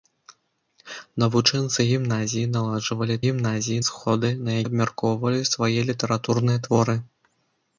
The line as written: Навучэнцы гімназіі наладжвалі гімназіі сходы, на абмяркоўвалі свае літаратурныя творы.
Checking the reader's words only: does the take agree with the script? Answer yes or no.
yes